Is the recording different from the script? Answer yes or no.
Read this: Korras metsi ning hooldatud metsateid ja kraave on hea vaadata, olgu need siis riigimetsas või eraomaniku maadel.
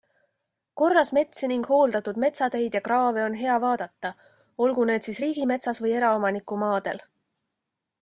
no